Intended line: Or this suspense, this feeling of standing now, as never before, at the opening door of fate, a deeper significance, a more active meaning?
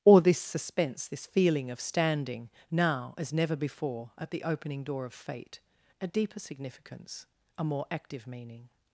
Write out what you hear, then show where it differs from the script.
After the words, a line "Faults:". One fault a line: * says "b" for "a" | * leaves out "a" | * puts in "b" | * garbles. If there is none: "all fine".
Or this suspense, this feeling of standing now, as never before, at the opening door of fate, a deeper significance, a more active meaning?
Faults:
all fine